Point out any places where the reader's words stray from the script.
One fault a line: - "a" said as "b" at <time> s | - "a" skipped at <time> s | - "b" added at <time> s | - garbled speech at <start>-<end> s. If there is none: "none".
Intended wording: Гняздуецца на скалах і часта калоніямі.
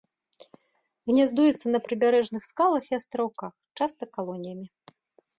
- "прыбярэжных" added at 1.9 s
- "астраўках" added at 3.0 s